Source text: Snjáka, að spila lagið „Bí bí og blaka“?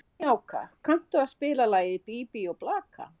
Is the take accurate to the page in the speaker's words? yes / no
no